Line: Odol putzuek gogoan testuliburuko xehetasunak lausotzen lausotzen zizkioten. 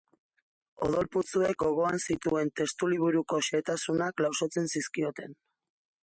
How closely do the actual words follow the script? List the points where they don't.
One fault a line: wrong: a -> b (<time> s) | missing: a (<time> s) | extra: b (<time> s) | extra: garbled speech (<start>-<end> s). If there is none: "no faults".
extra: zituen (2.1 s)
missing: lausotzen (4.7 s)